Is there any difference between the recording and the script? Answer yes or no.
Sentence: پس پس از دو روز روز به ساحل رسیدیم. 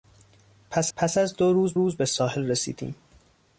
no